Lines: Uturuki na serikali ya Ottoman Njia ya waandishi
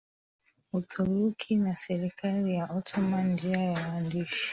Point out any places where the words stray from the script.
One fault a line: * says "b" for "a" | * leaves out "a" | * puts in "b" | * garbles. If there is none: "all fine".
all fine